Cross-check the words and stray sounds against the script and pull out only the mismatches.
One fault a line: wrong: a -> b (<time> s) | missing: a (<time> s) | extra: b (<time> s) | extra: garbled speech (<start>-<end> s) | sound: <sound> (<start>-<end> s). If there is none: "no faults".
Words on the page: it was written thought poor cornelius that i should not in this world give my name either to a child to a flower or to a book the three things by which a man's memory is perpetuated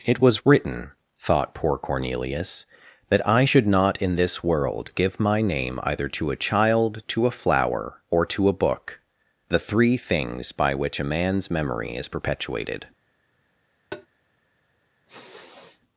sound: tap (13.9-14.1 s)
sound: sniff (15.1-15.8 s)